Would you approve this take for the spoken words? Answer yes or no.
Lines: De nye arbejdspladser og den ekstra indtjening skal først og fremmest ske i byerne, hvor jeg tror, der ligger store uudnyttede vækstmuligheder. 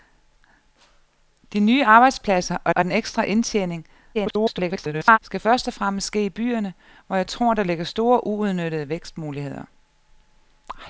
no